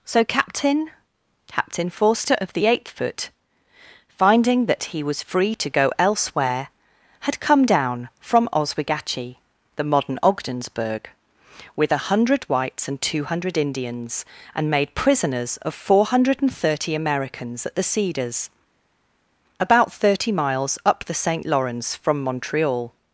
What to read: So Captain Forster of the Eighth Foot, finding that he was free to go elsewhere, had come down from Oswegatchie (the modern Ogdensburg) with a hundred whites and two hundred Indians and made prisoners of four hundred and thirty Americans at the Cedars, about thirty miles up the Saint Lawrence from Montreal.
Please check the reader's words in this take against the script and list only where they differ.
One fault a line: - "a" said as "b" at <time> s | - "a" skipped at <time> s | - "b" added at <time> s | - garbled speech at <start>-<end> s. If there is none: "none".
- "Captain" added at 1.5 s